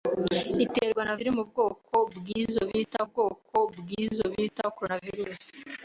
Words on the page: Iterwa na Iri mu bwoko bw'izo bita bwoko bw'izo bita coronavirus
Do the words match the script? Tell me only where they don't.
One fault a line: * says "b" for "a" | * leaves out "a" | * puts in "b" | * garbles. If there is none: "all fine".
all fine